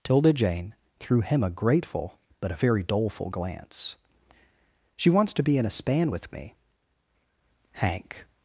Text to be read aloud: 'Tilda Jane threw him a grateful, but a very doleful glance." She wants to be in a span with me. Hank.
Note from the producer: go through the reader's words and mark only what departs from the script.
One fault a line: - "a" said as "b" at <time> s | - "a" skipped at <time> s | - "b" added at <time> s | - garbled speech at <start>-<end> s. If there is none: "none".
none